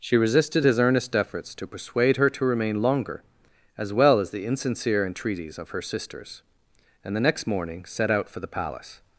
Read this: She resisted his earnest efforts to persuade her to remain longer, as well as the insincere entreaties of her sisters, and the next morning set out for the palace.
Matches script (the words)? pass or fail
pass